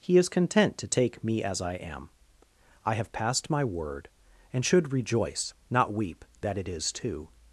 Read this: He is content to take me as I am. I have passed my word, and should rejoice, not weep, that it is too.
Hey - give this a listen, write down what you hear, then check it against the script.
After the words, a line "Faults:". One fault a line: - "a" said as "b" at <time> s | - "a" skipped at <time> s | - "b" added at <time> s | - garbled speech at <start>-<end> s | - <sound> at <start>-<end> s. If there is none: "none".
He is content to take me as I am. I have passed my word, and should rejoice, not weep, that it is too.
Faults:
none